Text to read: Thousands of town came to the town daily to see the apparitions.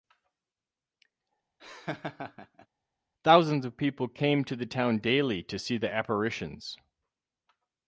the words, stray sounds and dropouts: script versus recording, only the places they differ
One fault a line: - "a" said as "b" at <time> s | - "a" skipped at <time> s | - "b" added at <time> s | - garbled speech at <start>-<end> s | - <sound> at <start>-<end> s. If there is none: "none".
- laugh at 1.6-2.7 s
- "town" said as "people" at 3.7 s